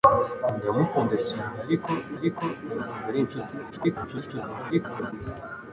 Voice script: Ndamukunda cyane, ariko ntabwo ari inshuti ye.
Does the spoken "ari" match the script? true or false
true